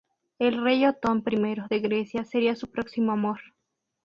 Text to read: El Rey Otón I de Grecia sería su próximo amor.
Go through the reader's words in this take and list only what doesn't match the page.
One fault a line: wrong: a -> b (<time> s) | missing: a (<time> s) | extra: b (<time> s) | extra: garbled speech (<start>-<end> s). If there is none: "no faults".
no faults